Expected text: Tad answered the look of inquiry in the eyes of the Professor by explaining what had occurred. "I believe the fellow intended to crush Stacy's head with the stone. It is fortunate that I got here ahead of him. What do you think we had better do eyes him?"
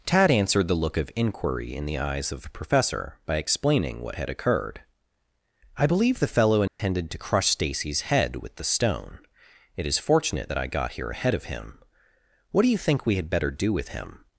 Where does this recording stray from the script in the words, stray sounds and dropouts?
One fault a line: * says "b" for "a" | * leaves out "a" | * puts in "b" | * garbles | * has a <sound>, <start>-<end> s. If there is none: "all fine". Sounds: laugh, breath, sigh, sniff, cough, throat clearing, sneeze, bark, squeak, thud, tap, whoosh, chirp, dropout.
* has a dropout, 6.7-6.8 s
* says "with" for "eyes"